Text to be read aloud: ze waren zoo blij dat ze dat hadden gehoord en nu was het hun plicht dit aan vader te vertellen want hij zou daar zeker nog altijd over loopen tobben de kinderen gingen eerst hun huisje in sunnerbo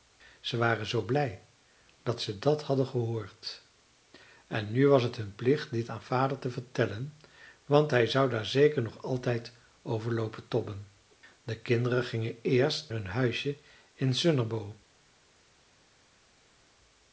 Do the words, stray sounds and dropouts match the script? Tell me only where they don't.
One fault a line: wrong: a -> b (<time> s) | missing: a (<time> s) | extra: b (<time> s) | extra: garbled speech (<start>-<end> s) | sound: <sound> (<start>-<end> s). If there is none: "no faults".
no faults